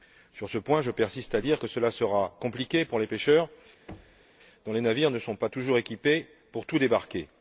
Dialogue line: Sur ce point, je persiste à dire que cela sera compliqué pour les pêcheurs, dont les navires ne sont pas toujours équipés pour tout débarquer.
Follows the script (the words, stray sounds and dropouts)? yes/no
no